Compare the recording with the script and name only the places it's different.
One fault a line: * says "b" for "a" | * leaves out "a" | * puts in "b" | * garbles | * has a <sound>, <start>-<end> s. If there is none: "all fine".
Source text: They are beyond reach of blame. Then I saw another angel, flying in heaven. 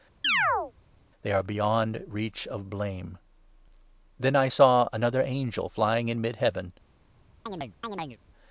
* has a chirp, 0.2-0.7 s
* puts in "mid"
* has a chirp, 7.5-8.2 s